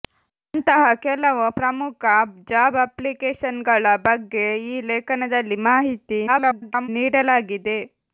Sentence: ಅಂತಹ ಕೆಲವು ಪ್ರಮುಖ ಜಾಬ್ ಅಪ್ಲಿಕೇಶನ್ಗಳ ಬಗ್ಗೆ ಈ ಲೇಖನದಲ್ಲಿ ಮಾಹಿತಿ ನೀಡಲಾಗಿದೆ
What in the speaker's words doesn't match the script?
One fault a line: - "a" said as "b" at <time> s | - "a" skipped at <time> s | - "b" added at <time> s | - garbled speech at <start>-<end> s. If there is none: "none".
- garbled speech at 6.3-6.9 s